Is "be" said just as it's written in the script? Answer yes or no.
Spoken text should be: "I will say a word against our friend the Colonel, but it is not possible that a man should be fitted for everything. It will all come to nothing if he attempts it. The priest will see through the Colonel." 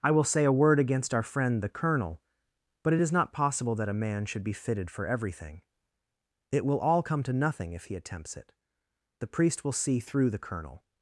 yes